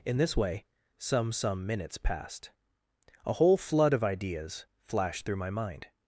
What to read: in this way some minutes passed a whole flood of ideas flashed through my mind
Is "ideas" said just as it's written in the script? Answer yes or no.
yes